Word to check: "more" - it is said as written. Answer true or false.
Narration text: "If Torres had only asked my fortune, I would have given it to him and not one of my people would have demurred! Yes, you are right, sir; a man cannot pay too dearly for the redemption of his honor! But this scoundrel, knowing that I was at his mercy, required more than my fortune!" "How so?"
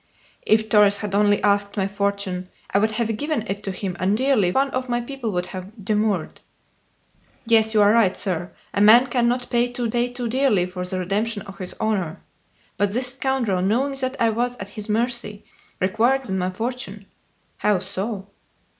false